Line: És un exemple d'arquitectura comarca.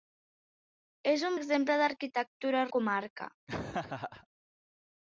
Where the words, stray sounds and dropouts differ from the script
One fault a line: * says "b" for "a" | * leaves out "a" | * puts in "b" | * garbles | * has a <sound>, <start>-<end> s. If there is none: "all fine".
* has a laugh, 3.5-4.3 s